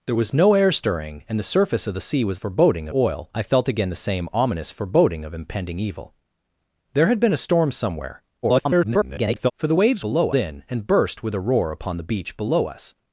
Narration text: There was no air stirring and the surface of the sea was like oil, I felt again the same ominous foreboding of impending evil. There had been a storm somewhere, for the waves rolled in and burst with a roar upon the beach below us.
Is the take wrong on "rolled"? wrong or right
wrong